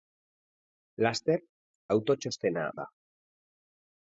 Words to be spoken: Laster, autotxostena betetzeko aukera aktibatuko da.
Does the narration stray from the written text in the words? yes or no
yes